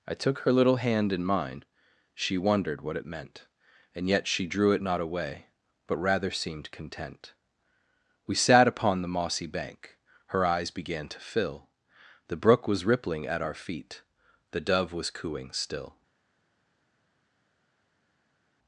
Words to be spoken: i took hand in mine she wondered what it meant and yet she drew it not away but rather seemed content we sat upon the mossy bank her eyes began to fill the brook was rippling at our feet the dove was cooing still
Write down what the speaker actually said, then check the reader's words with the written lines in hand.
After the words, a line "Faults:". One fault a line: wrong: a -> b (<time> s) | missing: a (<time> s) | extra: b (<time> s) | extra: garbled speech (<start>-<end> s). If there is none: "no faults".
i took her little hand in mine she wondered what it meant and yet she drew it not away but rather seemed content we sat upon the mossy bank her eyes began to fill the brook was rippling at our feet the dove was cooing still
Faults:
extra: her little (0.4 s)